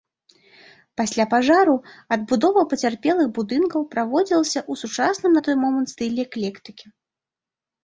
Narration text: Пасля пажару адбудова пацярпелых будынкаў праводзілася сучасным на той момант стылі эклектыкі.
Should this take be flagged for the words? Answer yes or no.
yes